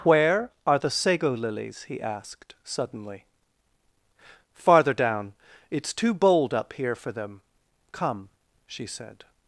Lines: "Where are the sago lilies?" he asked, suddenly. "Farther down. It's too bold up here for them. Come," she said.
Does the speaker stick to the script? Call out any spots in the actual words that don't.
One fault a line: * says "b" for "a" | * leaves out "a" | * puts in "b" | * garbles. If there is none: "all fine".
all fine